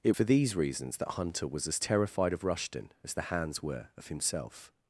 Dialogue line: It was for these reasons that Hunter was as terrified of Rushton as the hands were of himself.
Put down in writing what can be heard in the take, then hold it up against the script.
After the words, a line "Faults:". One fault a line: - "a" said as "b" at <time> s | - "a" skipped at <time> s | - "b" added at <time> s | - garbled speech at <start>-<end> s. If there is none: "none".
It for these reasons that Hunter was as terrified of Rushton as the hands were of himself.
Faults:
- "was" skipped at 0.1 s